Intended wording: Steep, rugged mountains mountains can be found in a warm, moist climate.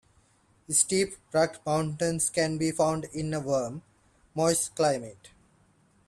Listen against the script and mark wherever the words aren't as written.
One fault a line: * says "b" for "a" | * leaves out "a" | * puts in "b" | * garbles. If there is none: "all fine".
* leaves out "mountains"